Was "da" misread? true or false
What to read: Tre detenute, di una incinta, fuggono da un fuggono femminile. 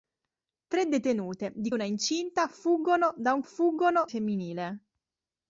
false